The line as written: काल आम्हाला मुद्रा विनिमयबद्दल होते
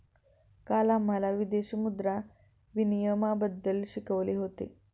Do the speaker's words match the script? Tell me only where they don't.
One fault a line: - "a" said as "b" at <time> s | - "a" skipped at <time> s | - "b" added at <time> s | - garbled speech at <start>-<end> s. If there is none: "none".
- "विदेशी" added at 1.3 s
- "शिकवले" added at 3.9 s